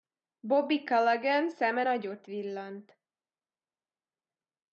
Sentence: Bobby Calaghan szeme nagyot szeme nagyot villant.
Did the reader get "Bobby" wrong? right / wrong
right